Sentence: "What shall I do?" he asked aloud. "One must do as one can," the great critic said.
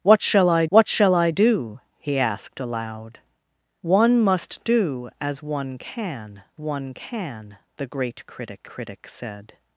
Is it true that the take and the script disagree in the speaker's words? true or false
true